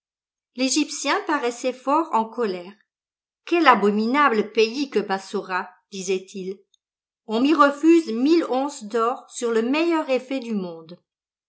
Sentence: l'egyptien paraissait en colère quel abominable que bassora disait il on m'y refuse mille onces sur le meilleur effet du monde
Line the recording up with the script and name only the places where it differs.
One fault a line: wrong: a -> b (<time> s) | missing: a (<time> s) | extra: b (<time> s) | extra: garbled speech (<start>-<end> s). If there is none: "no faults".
extra: fort (1.7 s)
extra: pays (4.5 s)
extra: d'or (8.8 s)